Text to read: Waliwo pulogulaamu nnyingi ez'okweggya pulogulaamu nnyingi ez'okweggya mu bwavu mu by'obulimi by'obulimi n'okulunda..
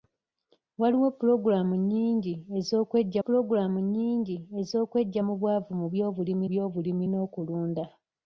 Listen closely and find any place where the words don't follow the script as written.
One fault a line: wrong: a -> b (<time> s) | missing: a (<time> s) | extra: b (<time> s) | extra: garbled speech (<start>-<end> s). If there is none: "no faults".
no faults